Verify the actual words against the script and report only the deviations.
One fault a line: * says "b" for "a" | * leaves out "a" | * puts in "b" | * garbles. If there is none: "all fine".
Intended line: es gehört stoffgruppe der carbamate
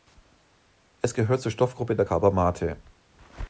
* puts in "zur"